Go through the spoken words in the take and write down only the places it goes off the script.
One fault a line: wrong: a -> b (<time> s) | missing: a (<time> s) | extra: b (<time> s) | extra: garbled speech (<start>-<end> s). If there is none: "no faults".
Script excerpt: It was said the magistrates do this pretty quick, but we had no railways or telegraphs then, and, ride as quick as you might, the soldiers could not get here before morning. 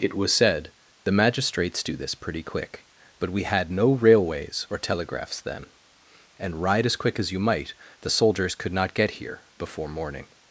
no faults